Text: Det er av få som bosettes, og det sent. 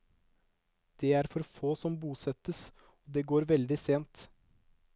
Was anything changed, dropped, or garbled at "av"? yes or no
yes